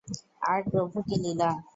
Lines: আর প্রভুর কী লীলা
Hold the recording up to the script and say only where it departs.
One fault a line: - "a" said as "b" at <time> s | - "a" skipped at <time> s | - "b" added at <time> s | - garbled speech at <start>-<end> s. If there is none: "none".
none